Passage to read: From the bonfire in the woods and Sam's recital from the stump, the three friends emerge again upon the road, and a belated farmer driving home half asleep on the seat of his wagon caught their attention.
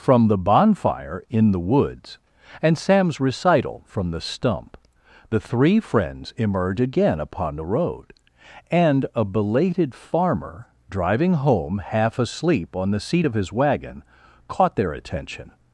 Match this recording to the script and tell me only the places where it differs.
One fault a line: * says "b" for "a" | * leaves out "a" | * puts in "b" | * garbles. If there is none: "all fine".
all fine